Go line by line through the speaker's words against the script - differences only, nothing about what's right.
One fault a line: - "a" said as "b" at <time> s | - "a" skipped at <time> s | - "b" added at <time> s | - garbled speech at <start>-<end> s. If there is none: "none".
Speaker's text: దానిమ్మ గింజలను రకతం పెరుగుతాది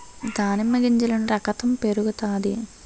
none